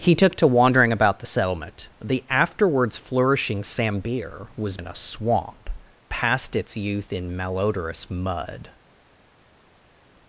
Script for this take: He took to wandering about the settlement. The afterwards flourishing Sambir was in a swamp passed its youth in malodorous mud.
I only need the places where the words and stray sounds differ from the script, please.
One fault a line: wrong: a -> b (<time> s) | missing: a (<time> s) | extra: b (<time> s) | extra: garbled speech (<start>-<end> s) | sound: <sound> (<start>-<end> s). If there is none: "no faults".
no faults